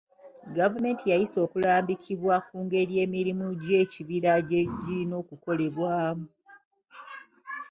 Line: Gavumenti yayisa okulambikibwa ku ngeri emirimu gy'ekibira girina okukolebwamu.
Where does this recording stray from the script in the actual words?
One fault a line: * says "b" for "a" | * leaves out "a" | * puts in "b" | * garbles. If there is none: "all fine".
* puts in "gye"